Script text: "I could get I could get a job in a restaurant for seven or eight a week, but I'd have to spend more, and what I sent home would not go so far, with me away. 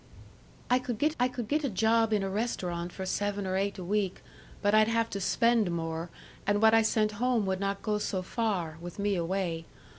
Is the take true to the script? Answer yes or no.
yes